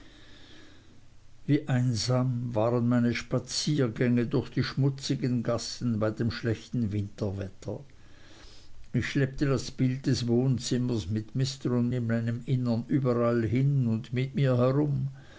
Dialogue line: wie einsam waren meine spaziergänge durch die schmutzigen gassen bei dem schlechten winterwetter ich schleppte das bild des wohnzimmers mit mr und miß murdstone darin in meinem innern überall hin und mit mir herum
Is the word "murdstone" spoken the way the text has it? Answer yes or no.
no